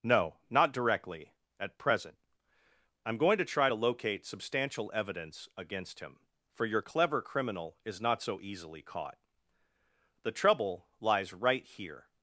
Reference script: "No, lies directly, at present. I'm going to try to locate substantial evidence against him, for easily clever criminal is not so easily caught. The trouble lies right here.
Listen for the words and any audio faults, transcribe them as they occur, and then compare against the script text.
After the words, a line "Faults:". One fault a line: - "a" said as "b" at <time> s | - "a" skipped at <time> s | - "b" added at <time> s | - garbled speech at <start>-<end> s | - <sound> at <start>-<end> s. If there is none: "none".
"No, not directly, at present. I'm going to try to locate substantial evidence against him, for your clever criminal is not so easily caught. The trouble lies right here.
Faults:
- "lies" said as "not" at 0.5 s
- "easily" said as "your" at 6.7 s